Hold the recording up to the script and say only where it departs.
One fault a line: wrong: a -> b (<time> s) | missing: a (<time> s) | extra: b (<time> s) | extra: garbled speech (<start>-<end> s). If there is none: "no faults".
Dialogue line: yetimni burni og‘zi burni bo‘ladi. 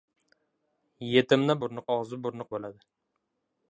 no faults